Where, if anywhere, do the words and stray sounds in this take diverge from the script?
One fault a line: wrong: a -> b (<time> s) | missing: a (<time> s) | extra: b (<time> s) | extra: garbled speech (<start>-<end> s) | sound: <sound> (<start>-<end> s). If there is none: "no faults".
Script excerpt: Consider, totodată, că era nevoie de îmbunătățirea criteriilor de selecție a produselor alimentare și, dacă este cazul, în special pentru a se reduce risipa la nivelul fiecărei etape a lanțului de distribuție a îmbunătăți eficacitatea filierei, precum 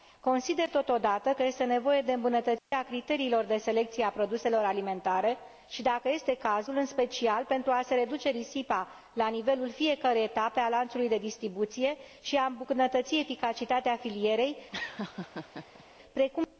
wrong: era -> este (1.4 s)
sound: dropout (2.6-2.7 s)
extra: și (12.2 s)
sound: laugh (14.7-15.8 s)